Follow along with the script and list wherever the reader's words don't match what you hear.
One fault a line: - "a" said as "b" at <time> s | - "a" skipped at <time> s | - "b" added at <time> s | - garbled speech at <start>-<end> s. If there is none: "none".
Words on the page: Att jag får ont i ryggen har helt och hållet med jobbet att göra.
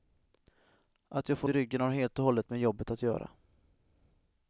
- "ont" skipped at 1.5 s